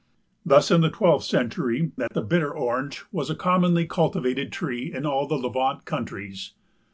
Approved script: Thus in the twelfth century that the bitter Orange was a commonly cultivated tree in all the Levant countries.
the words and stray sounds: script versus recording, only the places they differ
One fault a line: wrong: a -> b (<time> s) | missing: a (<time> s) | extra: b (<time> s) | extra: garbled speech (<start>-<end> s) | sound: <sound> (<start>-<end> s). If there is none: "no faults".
sound: dropout (2.1-2.1 s)